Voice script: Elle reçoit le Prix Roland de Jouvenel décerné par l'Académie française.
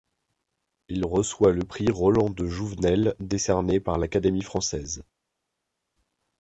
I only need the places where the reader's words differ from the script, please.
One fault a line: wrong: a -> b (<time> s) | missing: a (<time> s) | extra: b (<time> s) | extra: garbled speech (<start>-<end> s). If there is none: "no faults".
wrong: Elle -> Il (0.9 s)